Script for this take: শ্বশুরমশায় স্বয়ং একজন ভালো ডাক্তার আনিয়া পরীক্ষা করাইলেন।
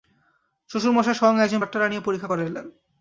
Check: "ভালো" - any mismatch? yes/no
yes